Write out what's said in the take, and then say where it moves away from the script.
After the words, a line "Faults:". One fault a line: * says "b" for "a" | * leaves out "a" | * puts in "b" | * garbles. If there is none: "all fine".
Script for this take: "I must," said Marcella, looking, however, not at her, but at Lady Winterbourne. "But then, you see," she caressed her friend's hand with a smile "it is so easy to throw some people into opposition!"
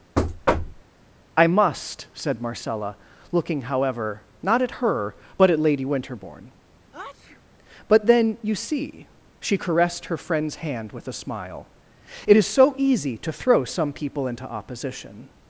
"I must," said Marcella, looking, however, not at her, but at Lady Winterbourne. "But then, you see," she caressed her friend's hand with a smile "it is so easy to throw some people into opposition!"
Faults:
all fine